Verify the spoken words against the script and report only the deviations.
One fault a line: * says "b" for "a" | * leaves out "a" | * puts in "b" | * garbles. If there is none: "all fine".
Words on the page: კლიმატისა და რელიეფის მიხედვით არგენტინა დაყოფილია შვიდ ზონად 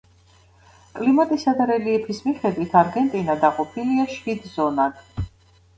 all fine